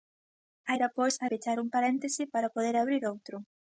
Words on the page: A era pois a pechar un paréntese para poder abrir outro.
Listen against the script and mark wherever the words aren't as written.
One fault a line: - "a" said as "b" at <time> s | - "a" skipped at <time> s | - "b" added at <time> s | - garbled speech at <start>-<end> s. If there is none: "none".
none